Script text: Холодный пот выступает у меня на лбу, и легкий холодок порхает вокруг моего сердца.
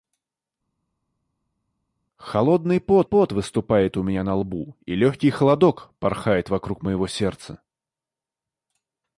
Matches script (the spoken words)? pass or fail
fail